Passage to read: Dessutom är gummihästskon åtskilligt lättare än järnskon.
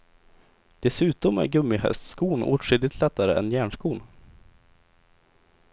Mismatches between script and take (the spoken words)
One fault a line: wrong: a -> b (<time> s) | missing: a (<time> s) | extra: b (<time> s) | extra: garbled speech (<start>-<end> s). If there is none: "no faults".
no faults